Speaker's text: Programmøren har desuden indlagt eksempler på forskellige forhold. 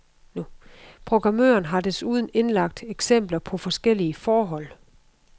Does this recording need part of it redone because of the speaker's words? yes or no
no